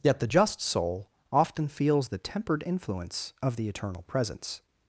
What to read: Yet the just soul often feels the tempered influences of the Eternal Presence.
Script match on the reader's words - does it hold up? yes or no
no